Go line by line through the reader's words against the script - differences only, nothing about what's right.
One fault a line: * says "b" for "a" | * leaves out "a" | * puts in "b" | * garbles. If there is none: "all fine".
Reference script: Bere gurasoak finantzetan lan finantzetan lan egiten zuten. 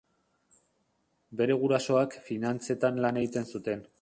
* leaves out "finantzetan lan"